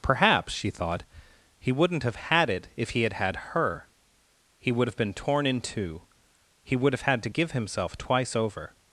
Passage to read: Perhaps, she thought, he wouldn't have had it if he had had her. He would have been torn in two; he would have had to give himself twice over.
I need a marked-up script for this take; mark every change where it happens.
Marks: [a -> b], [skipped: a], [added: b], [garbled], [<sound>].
Perhaps, she thought, he wouldn't have had it if he had had her. He would have been torn in two; he would have had to give himself twice over.